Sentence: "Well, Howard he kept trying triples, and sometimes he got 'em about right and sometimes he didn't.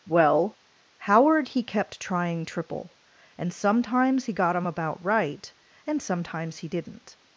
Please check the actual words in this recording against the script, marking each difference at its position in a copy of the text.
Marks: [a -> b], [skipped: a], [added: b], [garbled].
"Well, Howard he kept trying [triples, -> triple] and sometimes he got 'em about right and sometimes he didn't.